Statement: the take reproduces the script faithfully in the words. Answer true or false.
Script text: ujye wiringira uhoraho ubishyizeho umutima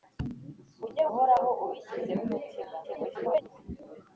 false